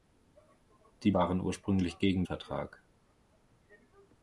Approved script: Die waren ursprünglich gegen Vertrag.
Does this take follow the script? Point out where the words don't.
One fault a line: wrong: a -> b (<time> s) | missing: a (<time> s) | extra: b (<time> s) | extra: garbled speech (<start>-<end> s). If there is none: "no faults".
no faults